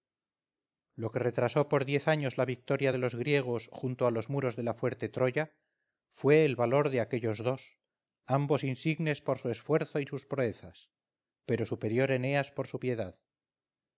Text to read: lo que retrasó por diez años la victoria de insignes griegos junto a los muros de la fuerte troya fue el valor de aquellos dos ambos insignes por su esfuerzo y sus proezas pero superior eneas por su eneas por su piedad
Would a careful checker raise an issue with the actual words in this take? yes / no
yes